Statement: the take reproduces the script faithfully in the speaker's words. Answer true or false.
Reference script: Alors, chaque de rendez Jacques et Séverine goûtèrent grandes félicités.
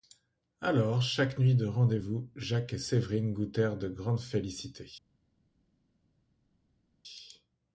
false